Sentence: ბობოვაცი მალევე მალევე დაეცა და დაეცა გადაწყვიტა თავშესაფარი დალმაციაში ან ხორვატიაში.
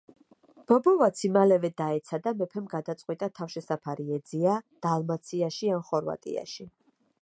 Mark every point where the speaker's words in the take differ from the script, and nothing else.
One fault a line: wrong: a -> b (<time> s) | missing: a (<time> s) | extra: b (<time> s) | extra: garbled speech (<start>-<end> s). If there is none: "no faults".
missing: მალევე (1.7 s)
wrong: დაეცა -> მეფემ (2.4 s)
extra: ეძია (4.2 s)